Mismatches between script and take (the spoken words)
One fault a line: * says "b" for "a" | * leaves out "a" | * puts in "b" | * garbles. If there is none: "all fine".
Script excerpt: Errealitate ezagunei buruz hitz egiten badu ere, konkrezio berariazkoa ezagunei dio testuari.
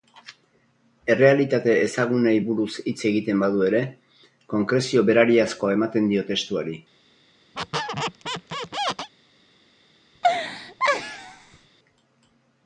* says "ematen" for "ezagunei"